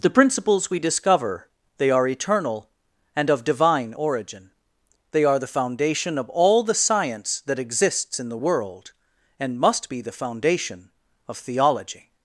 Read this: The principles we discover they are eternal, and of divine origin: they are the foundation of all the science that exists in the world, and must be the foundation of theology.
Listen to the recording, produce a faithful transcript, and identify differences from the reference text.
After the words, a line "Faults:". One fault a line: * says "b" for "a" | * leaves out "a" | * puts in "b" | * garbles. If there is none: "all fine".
The principles we discover they are eternal, and of divine origin: they are the foundation of all the science that exists in the world, and must be the foundation of theology.
Faults:
all fine